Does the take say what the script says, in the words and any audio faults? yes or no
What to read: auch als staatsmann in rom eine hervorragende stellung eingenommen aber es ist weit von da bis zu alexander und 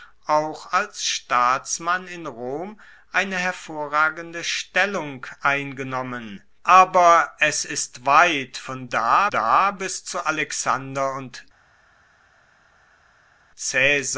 no